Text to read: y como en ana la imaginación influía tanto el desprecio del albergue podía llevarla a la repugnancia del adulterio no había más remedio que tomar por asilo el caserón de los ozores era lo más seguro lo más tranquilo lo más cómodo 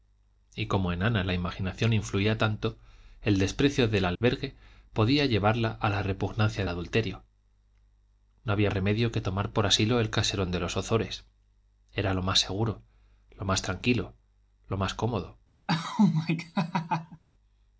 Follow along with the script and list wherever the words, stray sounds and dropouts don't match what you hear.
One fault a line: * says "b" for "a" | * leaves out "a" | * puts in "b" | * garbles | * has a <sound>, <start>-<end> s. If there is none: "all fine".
* has a dropout, 4.2-4.2 s
* leaves out "del"
* leaves out "más"
* has a laugh, 15.7-17.2 s